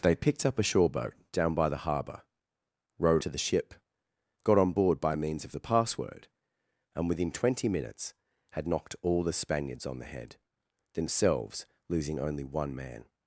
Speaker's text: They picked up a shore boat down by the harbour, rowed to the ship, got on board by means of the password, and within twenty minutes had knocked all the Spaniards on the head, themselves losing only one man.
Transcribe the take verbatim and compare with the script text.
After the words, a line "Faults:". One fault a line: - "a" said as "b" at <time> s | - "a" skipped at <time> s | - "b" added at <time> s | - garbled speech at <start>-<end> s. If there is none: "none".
They picked up a shore boat down by the harbour, rowed to the ship, got on board by means of the password, and within twenty minutes had knocked all the Spaniards on the head, themselves losing only one man.
Faults:
none